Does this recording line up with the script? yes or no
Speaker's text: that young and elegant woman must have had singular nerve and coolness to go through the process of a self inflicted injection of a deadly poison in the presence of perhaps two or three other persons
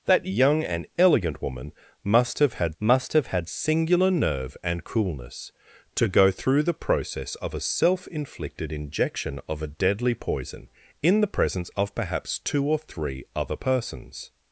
no